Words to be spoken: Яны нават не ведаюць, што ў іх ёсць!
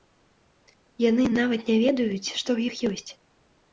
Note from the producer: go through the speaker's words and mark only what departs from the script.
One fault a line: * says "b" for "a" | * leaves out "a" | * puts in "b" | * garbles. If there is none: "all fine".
all fine